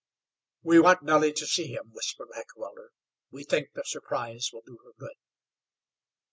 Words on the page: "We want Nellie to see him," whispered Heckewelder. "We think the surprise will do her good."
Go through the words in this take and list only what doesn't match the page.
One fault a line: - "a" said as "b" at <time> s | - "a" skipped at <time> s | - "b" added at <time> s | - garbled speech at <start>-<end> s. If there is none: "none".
none